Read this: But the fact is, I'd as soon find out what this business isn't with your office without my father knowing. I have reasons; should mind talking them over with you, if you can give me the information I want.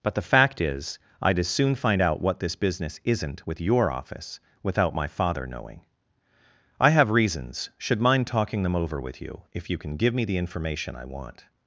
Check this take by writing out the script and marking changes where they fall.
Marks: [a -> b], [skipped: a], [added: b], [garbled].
But the fact is, I'd as soon find out what this business isn't with your office without my father knowing. I have reasons; should mind talking them over with you, if you can give me the information I want.